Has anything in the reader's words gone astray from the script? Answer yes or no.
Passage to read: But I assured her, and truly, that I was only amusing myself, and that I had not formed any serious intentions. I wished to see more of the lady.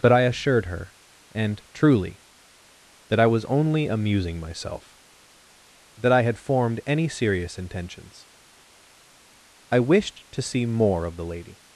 yes